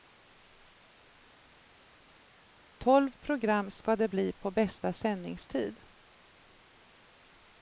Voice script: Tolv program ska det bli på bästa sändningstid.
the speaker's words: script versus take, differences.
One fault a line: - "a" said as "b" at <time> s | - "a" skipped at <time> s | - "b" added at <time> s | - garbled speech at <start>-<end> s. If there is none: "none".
none